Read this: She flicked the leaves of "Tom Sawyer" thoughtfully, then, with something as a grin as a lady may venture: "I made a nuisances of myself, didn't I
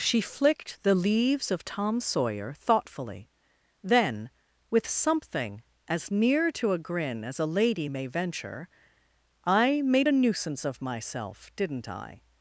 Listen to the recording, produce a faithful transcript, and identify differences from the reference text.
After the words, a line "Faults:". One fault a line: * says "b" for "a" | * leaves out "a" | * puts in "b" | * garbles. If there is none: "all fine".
She flicked the leaves of "Tom Sawyer" thoughtfully, then, with something as near to a grin as a lady may venture: "I made a nuisance of myself, didn't I
Faults:
* puts in "near to"
* says "nuisance" for "nuisances"